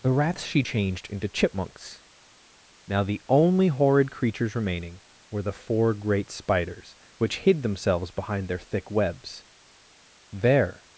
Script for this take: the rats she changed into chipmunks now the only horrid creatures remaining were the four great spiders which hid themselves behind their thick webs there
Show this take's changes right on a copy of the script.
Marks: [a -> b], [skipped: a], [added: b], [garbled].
the rats she changed into chipmunks now the only horrid creatures remaining were the four great spiders which hid themselves behind their thick webs there